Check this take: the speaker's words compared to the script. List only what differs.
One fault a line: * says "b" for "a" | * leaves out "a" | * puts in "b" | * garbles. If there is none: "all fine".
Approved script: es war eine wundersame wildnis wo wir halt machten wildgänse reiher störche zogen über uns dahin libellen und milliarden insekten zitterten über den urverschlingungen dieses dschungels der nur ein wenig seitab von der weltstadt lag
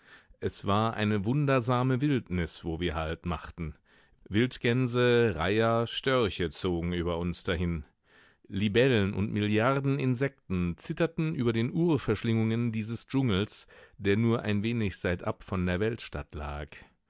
all fine